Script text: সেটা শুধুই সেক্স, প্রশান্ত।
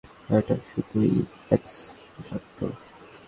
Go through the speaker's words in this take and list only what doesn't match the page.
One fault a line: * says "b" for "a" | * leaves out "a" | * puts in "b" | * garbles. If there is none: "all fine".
* says "এটা" for "সেটা"